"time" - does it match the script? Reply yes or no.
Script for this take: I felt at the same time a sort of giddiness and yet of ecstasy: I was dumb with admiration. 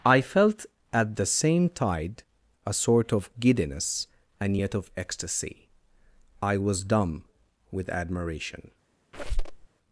no